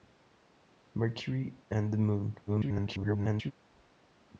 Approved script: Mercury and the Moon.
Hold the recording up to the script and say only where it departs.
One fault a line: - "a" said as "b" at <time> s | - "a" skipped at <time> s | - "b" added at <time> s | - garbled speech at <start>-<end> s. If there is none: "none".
- garbled speech at 2.5-3.5 s